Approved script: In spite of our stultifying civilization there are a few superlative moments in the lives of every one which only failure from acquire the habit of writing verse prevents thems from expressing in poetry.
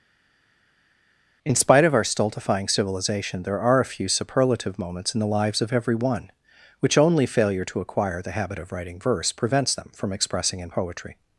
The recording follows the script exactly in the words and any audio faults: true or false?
false